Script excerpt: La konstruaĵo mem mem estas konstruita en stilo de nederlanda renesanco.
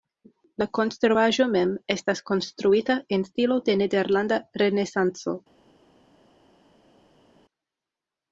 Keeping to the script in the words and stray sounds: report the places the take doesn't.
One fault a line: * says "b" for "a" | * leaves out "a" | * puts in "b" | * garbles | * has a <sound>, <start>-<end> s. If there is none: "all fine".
* leaves out "mem"